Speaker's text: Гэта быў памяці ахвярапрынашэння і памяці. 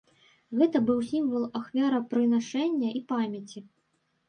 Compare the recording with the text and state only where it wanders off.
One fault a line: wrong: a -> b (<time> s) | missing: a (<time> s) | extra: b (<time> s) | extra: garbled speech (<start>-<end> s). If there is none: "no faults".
wrong: памяці -> сімвал (1.1 s)